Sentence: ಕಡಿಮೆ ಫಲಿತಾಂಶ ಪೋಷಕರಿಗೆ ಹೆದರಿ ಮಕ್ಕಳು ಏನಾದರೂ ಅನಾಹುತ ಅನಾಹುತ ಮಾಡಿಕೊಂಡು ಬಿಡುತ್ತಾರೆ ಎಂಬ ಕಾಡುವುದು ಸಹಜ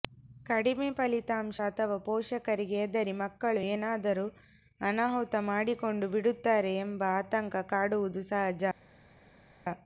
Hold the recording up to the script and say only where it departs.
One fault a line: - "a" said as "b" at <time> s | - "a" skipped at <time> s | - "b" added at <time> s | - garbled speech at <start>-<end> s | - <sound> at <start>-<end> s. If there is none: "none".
- "ಅಥವಾ" added at 1.6 s
- "ಅನಾಹುತ" skipped at 5.3 s
- "ಆತಂಕ" added at 7.2 s